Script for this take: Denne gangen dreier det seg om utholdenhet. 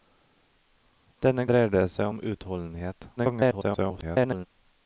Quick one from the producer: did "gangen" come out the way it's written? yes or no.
no